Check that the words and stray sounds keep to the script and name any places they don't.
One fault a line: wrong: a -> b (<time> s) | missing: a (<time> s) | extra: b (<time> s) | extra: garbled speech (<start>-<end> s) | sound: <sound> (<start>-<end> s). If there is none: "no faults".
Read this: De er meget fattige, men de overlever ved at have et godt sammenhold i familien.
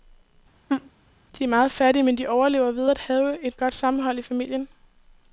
sound: laugh (0.7-0.9 s)